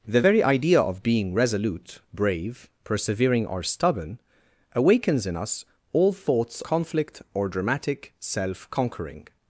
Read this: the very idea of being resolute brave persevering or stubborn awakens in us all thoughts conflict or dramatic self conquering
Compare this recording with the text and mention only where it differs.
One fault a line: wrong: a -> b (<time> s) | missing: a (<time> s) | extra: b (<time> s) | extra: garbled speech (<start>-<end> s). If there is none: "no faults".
no faults